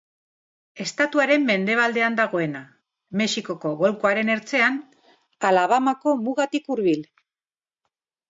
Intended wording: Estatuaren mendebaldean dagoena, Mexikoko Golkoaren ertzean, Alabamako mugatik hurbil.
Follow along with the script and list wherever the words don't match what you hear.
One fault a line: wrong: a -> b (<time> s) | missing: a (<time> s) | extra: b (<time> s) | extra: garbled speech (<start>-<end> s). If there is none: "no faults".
no faults